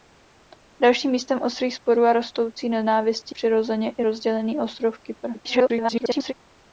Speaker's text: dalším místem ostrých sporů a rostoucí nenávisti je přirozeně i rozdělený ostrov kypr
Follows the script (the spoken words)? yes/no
no